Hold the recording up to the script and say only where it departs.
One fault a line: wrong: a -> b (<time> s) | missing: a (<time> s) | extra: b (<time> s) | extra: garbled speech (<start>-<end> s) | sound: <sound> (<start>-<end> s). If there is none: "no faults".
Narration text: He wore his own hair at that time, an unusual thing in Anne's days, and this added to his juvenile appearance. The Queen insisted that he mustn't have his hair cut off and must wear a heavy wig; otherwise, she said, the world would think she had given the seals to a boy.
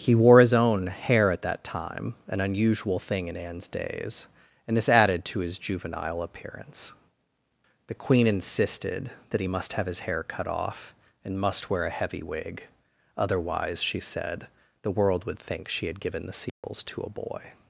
wrong: mustn't -> must (9.4 s)
sound: dropout (16.5-16.6 s)